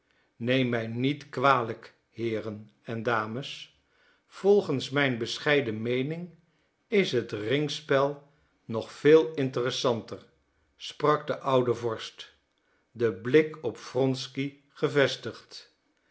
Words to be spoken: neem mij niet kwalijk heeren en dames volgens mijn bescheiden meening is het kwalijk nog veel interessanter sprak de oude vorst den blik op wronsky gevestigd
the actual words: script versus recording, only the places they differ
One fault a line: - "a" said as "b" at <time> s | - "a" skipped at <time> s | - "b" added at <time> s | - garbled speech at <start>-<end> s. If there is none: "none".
- "kwalijk" said as "ringspel" at 7.3 s